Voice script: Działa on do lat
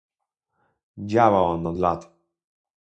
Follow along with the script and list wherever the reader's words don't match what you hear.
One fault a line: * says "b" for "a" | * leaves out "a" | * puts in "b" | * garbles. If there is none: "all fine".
* says "od" for "do"